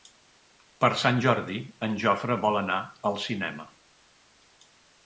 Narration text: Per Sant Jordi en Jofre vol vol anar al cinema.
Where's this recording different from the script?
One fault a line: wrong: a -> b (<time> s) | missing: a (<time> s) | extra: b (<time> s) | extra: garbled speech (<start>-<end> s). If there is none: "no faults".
missing: vol (2.6 s)